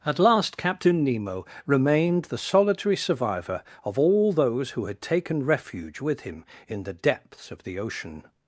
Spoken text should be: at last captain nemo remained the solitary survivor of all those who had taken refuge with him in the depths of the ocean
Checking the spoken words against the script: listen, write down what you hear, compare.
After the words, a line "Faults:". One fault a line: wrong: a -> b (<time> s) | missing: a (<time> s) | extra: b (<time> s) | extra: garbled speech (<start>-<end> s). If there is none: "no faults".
at last captain nemo remained the solitary survivor of all those who had taken refuge with him in the depths of the ocean
Faults:
no faults